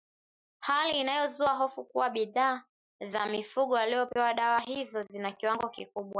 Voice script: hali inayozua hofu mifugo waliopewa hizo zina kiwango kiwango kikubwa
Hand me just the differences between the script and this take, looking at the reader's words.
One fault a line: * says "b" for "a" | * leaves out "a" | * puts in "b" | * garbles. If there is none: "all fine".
* puts in "kuwa bidhaa za"
* puts in "dawa"
* leaves out "kiwango"